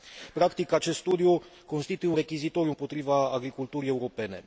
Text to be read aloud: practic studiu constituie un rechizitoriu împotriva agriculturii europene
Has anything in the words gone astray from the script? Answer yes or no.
yes